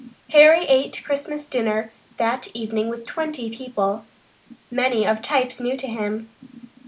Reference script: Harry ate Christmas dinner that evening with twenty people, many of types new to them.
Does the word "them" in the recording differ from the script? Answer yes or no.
yes